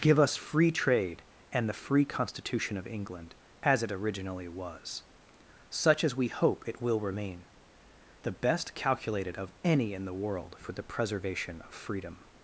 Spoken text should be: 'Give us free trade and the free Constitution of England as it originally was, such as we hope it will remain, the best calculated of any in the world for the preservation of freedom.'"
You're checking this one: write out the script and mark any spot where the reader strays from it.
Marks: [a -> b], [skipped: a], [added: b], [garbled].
'Give us free trade and the free Constitution of England as it originally was, such as we hope it will remain, the best calculated of any in the world for the preservation of freedom.'"